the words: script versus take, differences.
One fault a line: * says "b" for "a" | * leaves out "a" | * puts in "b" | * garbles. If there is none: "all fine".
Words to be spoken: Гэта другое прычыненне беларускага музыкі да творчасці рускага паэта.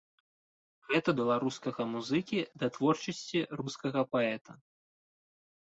* leaves out "другое прычыненне"